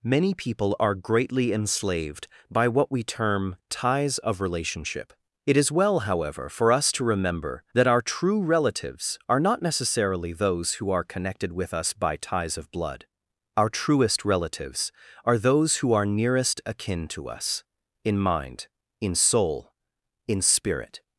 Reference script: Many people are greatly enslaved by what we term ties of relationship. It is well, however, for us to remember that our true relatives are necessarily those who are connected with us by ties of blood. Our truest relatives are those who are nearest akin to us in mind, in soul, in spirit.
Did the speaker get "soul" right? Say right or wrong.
right